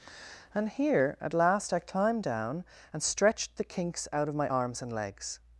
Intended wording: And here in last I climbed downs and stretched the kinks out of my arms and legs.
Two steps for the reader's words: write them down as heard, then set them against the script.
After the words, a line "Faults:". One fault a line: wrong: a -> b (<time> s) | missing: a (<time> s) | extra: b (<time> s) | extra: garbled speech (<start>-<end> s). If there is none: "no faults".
And here at last I climbed down and stretched the kinks out of my arms and legs.
Faults:
wrong: in -> at (1.2 s)
wrong: downs -> down (2.2 s)